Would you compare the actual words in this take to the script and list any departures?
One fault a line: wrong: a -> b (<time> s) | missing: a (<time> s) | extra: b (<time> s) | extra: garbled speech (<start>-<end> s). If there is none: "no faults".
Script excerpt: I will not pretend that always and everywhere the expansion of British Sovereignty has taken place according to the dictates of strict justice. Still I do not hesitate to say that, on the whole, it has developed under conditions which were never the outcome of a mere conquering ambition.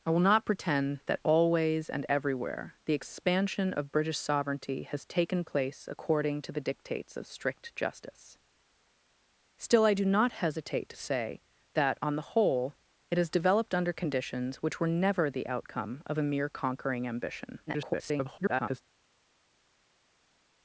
extra: garbled speech (17.7-18.8 s)